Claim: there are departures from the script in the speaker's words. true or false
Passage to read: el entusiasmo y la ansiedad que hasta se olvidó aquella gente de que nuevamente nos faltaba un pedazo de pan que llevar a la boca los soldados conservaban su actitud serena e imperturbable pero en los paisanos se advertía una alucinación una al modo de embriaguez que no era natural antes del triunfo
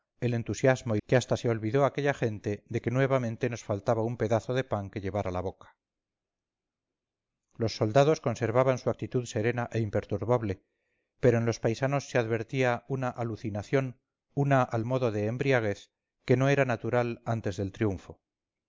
true